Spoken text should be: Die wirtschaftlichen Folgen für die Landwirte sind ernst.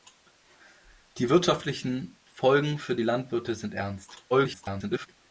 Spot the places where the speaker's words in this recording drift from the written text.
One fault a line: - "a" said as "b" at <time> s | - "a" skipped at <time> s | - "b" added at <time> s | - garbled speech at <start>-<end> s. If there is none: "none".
- garbled speech at 4.3-5.1 s